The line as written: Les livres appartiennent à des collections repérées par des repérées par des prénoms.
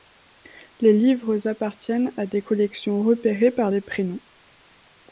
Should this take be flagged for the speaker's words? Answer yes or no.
yes